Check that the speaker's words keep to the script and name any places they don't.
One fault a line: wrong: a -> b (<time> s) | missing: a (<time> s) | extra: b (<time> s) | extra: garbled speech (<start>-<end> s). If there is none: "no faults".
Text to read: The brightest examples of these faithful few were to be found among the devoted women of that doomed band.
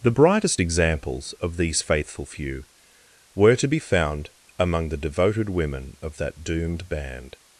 no faults